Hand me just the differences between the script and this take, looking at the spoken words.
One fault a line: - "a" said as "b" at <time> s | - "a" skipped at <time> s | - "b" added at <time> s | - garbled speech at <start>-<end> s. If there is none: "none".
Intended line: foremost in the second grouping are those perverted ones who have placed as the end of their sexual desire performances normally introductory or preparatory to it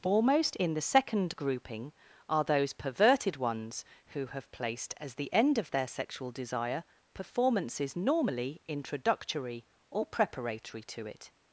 none